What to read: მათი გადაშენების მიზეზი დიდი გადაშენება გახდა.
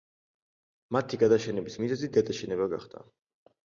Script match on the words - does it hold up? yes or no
no